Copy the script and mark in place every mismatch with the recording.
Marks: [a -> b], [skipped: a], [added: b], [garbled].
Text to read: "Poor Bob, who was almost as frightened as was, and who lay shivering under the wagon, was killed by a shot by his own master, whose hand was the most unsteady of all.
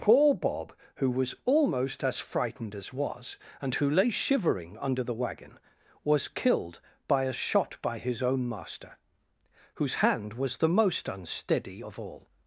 "Poor Bob, who was almost as frightened as was, and who lay shivering under the wagon, was killed by a shot by his own master, whose hand was the most unsteady of all.